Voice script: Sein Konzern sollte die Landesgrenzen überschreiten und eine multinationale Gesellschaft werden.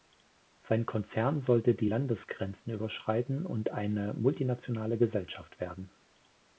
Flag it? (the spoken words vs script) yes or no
no